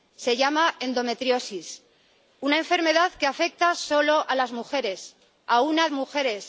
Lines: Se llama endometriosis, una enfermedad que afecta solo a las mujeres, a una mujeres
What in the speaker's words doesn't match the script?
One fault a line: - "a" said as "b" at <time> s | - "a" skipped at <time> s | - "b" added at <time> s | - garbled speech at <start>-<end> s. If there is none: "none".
none